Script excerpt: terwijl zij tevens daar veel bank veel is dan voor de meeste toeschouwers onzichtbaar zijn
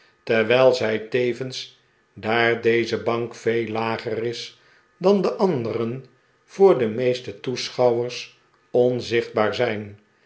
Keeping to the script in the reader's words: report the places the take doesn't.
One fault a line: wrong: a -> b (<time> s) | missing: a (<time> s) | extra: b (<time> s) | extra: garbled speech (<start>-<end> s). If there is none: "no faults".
wrong: veel -> deze (2.6 s)
extra: lager (3.7 s)
extra: de anderen (5.2 s)